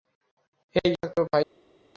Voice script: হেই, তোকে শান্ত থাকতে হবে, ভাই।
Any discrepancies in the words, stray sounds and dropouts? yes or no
yes